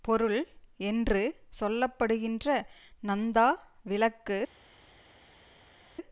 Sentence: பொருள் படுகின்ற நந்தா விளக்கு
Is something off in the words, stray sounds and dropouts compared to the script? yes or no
yes